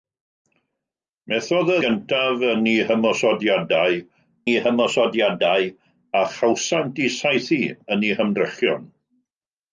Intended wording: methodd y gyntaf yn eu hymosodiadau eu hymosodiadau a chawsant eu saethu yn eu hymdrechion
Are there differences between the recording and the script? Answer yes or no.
no